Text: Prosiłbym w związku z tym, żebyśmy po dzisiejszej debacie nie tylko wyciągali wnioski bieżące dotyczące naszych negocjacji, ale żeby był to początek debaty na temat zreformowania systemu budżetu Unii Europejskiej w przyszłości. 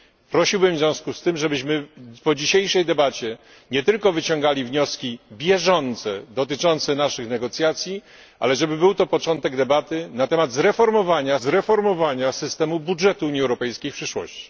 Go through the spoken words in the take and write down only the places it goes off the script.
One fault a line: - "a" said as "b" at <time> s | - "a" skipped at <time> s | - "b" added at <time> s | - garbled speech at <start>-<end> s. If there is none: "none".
- "zreformowania" added at 11.4 s